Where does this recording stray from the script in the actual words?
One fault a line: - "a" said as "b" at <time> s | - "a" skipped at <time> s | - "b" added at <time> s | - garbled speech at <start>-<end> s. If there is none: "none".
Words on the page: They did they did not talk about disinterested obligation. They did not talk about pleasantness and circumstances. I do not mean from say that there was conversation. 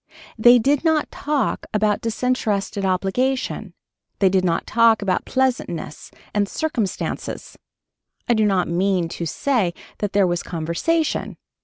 - "they did" skipped at 0.8 s
- "from" said as "to" at 9.1 s